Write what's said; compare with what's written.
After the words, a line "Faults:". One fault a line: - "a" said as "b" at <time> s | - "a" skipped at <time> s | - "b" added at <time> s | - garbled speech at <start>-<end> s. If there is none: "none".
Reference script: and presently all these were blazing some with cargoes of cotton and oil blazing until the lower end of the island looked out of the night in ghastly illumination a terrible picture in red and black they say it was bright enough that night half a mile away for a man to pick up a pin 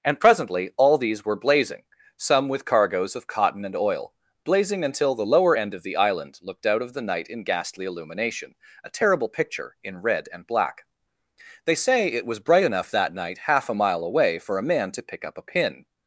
and presently all these were blazing some with cargoes of cotton and oil blazing until the lower end of the island looked out of the night in ghastly illumination a terrible picture in red and black they say it was bright enough that night half a mile away for a man to pick up a pin
Faults:
none